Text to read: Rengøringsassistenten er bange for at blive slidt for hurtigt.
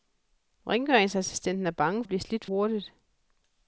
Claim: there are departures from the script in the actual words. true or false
true